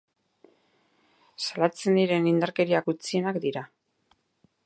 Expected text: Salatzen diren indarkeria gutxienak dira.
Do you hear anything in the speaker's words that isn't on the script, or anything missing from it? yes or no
no